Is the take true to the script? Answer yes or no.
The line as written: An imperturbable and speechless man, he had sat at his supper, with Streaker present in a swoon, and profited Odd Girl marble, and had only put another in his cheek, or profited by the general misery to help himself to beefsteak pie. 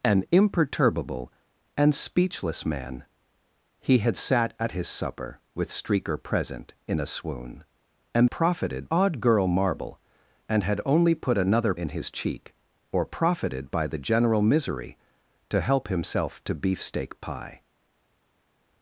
yes